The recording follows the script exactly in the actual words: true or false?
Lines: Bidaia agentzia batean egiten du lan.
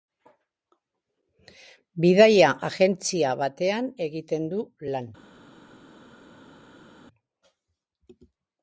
true